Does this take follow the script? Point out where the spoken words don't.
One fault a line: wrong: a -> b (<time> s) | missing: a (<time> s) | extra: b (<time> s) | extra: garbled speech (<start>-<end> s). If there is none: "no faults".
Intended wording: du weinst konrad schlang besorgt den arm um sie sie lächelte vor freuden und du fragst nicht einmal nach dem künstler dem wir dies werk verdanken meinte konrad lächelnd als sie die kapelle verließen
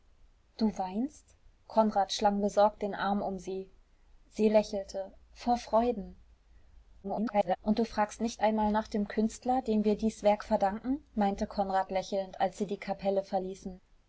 extra: garbled speech (7.0-7.6 s)